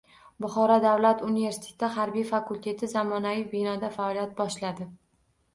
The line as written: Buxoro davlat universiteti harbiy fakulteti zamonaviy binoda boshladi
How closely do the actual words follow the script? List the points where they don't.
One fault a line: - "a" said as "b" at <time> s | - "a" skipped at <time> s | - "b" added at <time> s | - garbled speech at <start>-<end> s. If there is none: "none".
- "faoliyat" added at 4.0 s